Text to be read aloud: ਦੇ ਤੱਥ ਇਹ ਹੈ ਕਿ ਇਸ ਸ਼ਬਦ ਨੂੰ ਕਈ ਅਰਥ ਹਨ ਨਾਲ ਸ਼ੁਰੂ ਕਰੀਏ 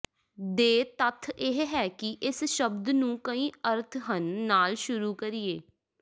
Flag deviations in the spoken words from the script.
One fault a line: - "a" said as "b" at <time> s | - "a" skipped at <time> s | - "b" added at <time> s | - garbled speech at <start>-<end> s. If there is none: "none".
none